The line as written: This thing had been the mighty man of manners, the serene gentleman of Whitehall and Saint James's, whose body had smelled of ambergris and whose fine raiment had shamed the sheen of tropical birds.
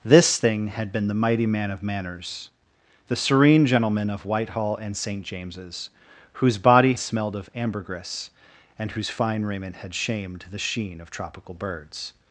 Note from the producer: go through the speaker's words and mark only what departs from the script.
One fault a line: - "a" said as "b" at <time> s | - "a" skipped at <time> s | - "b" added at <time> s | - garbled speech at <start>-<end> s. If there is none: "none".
- "had" skipped at 6.9 s